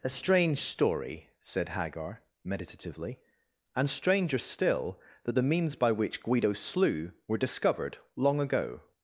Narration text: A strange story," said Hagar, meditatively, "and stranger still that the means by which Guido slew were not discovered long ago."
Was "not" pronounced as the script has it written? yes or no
no